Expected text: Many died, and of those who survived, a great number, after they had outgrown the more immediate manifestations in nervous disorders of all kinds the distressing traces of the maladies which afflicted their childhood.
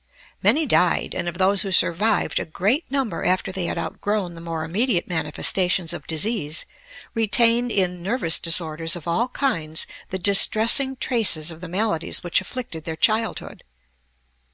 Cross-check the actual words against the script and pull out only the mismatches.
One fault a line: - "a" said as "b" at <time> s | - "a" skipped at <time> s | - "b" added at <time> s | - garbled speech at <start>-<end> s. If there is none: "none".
- "of disease retained" added at 5.9 s